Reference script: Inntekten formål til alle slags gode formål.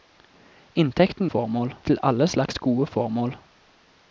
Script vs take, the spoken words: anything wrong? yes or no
no